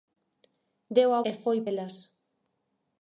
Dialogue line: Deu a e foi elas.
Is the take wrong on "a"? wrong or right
right